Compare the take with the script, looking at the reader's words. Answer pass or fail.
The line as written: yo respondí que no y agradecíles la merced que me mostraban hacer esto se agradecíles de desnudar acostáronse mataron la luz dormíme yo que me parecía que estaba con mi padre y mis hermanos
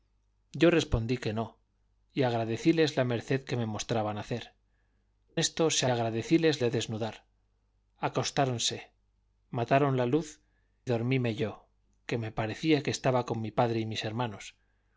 pass